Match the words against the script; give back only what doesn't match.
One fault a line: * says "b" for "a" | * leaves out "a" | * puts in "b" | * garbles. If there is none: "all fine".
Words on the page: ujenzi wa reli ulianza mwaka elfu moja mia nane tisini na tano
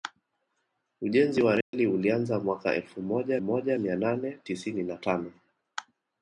* puts in "moja"